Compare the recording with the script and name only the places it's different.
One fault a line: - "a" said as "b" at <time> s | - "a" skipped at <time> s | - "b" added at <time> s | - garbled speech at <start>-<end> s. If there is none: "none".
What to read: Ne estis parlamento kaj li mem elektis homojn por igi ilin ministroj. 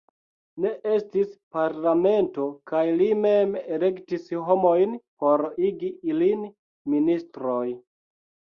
none